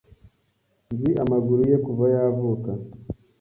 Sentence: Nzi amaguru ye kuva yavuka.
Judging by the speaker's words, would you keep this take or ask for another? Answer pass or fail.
pass